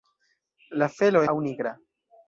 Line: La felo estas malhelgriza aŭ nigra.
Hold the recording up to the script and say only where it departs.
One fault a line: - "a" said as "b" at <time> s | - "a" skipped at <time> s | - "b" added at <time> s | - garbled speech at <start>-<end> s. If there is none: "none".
- "estas malhelgriza" skipped at 1.2 s